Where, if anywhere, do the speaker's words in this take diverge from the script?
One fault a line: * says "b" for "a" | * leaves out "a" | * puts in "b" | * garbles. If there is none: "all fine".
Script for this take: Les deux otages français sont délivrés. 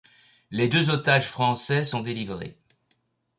all fine